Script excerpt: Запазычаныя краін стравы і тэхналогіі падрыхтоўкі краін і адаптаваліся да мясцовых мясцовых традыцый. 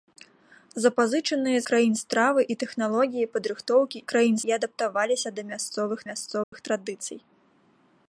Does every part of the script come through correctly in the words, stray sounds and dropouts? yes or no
no